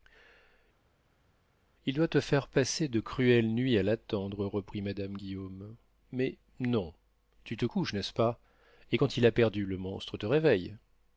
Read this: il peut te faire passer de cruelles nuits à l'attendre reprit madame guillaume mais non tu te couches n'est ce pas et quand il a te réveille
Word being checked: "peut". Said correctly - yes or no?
no